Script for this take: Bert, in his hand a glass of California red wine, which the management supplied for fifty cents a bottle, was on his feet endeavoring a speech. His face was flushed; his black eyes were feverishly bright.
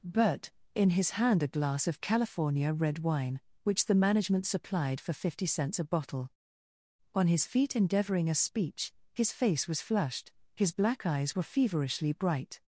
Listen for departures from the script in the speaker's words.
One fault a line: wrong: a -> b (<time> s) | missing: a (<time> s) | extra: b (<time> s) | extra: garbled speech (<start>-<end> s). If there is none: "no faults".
missing: was (6.3 s)